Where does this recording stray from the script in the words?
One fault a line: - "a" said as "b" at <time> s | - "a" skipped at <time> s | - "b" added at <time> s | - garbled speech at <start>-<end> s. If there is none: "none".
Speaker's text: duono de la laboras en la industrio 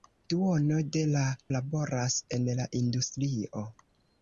none